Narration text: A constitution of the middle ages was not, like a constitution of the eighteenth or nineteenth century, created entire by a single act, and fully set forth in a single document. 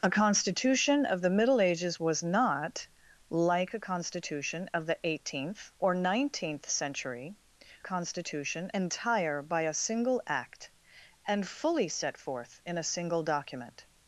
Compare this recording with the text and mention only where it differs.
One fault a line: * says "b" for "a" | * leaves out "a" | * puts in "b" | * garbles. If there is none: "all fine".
* says "constitution" for "created"